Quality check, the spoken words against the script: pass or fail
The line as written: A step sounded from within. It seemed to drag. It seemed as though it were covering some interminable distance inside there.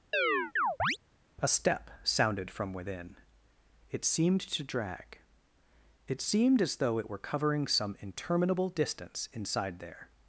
pass